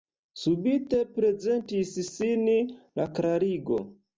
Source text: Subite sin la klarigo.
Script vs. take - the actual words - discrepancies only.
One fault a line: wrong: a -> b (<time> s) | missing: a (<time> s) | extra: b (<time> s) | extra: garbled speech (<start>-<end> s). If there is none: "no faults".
extra: prezentis (1.2 s)